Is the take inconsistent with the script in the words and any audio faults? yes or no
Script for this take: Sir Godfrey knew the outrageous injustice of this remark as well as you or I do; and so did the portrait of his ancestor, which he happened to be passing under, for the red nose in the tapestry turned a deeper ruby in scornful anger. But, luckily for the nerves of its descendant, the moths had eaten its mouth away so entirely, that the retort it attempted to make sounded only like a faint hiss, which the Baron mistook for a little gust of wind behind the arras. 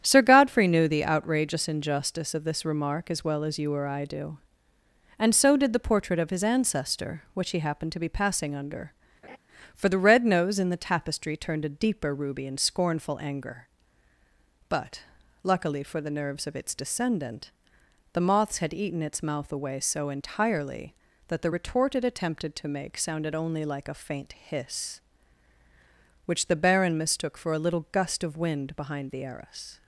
yes